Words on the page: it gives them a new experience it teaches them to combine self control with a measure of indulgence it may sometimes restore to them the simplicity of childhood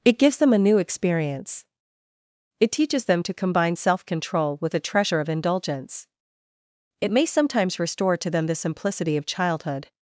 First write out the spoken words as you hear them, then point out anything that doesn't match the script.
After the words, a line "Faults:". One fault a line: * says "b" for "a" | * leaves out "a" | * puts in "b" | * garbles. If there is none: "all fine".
it gives them a new experience it teaches them to combine self control with a treasure of indulgence it may sometimes restore to them the simplicity of childhood
Faults:
* says "treasure" for "measure"